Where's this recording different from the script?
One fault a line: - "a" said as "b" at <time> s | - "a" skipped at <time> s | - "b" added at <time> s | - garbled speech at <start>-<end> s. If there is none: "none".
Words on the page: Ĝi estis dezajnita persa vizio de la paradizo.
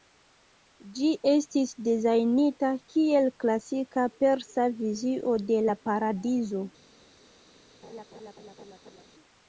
- "kiel klasika" added at 2.9 s